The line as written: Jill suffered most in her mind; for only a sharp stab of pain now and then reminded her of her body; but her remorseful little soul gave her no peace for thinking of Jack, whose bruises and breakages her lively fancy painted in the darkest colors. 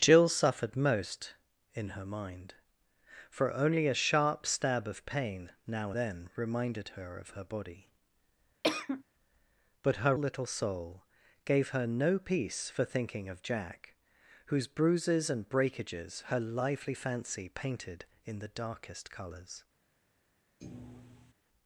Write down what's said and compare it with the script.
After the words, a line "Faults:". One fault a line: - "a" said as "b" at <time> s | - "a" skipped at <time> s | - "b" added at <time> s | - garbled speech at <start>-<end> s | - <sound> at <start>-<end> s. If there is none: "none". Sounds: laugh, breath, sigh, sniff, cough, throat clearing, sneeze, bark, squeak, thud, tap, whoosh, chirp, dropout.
Jill suffered most in her mind; for only a sharp stab of pain now then reminded her of her body; but her little soul gave her no peace for thinking of Jack, whose bruises and breakages her lively fancy painted in the darkest colors.
Faults:
- "and" skipped at 5.9 s
- cough at 8.6-9.0 s
- "remorseful" skipped at 10.1 s
- thud at 20.6-21.3 s